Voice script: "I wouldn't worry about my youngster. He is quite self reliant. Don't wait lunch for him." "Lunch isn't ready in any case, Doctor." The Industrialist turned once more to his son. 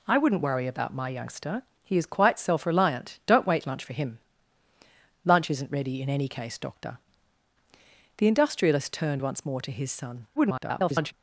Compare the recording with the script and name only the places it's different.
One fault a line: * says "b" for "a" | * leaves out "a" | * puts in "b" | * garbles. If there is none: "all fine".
* garbles